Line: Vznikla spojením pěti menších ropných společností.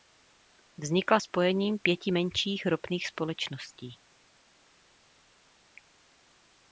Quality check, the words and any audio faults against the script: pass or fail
pass